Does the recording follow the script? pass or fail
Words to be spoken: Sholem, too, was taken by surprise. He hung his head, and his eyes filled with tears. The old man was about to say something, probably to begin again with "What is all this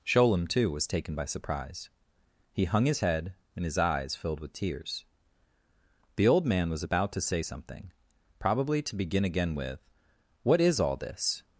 pass